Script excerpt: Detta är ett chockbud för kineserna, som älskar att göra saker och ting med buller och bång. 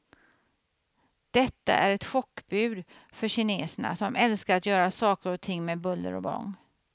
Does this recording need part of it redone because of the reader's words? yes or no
no